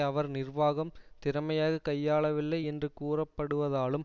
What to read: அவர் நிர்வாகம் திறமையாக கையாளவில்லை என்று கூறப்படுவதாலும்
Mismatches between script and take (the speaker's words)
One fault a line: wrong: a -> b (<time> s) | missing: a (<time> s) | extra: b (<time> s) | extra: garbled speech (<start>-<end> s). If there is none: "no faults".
no faults